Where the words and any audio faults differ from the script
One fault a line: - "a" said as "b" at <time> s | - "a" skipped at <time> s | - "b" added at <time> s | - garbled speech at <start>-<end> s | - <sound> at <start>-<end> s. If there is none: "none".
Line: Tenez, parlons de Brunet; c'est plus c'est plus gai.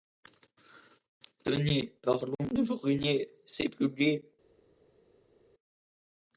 - "c'est plus" skipped at 3.9 s